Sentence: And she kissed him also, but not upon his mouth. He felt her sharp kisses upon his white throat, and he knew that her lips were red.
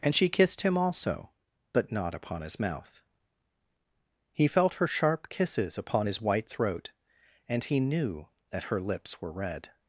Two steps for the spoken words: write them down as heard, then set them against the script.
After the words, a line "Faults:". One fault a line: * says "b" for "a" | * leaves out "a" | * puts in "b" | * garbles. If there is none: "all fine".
And she kissed him also, but not upon his mouth. He felt her sharp kisses upon his white throat, and he knew that her lips were red.
Faults:
all fine